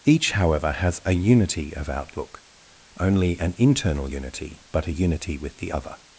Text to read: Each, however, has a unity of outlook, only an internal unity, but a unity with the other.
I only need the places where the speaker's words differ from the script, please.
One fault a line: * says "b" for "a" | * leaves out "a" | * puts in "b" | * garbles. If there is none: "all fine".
all fine